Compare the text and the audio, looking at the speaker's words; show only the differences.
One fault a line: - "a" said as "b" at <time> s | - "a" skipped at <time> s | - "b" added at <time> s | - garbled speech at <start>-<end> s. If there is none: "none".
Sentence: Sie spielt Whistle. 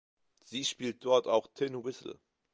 - "dort auch Tin" added at 1.1 s